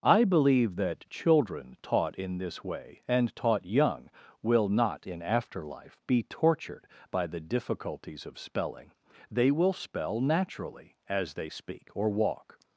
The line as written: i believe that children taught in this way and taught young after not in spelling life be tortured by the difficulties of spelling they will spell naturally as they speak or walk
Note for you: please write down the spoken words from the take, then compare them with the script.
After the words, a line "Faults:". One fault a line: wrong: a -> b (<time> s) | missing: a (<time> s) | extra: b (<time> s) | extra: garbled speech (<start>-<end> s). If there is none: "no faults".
i believe that children taught in this way and taught young will not in after life be tortured by the difficulties of spelling they will spell naturally as they speak or walk
Faults:
wrong: after -> will (4.4 s)
wrong: spelling -> after (5.2 s)